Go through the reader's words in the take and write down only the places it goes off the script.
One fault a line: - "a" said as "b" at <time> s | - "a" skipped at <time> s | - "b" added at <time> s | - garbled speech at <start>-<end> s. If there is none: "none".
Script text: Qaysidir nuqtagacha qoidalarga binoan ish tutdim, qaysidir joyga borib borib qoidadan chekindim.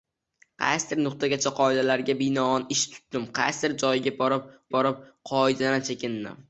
none